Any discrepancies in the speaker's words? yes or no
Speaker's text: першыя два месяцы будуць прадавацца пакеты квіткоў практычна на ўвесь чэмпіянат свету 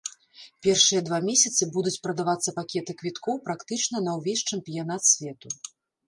no